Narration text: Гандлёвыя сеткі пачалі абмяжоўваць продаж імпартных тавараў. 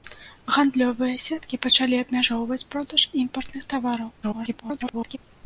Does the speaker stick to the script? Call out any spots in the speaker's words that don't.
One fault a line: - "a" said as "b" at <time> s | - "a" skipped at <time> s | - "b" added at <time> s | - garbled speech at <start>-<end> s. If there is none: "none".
- garbled speech at 4.2-5.2 s